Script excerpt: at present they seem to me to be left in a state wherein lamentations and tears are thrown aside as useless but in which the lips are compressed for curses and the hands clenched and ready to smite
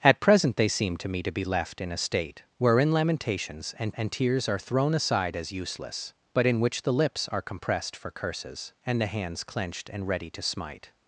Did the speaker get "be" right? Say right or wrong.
right